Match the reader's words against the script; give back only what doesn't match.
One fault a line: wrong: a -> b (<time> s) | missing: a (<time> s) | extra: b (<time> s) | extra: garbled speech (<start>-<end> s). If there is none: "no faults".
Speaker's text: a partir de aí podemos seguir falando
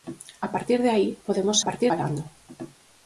wrong: seguir -> partir (1.7 s)